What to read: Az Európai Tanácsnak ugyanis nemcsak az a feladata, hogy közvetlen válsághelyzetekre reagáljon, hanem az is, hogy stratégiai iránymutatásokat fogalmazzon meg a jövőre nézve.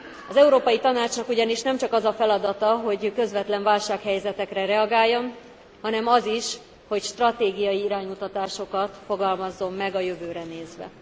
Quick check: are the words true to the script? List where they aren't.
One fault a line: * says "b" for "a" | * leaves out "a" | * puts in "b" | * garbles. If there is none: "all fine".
all fine